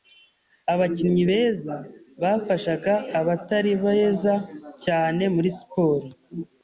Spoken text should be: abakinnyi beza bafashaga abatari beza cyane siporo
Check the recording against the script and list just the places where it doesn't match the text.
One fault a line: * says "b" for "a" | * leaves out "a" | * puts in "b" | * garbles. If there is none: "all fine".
* puts in "muri"